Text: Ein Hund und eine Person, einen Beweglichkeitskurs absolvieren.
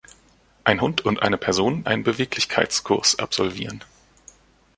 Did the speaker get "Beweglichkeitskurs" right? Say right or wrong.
right